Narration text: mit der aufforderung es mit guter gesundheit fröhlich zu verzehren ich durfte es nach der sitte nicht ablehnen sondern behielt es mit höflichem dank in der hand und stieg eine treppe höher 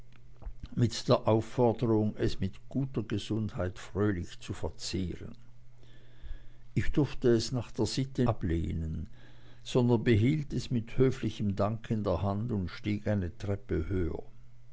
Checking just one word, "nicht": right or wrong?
wrong